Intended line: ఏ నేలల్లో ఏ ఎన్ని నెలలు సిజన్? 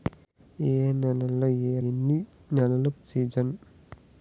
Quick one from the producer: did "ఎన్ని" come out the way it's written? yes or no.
yes